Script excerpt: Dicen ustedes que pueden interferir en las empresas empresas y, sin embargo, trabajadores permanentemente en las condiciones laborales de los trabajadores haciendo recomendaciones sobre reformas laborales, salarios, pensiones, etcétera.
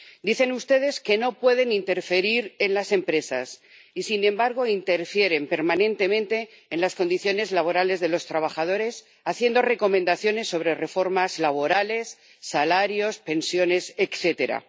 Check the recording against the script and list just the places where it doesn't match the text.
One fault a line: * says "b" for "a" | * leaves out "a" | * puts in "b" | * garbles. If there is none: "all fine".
* puts in "no"
* leaves out "empresas"
* says "interfieren" for "trabajadores"